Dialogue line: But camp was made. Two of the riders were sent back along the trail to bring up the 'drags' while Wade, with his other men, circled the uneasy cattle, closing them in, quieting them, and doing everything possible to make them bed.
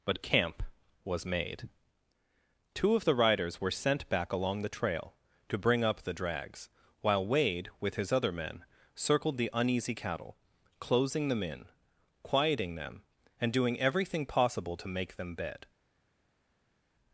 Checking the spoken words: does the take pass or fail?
pass